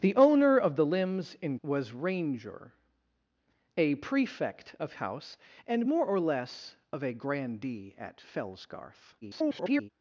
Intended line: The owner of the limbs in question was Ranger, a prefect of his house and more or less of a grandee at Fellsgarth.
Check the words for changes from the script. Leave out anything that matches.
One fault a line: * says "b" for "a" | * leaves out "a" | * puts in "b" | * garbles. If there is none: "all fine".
* leaves out "question"
* leaves out "his"
* garbles